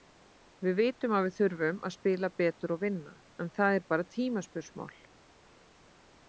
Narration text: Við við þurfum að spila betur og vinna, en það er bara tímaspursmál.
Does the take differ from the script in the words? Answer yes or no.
yes